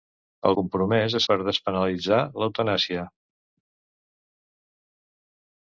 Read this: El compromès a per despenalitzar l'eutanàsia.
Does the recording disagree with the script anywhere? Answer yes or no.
no